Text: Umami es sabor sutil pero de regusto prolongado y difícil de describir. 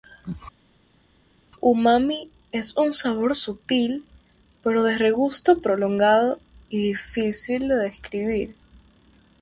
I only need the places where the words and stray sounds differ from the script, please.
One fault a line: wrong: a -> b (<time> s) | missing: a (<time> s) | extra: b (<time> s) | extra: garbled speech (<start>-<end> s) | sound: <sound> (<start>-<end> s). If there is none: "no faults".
extra: un (2.8 s)